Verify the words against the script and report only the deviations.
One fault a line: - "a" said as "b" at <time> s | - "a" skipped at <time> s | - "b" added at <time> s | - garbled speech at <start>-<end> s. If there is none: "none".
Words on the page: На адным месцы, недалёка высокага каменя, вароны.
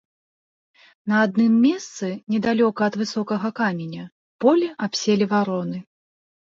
- "ад" added at 2.9 s
- "поле абселі" added at 4.4 s